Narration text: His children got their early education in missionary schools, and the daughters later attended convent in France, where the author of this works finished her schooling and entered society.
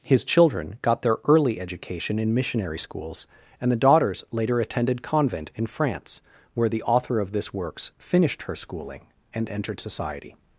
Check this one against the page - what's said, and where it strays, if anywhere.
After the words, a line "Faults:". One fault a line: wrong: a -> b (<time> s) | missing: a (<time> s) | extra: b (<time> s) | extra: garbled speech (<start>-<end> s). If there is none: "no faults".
His children got their early education in missionary schools, and the daughters later attended convent in France, where the author of this works finished her schooling and entered society.
Faults:
no faults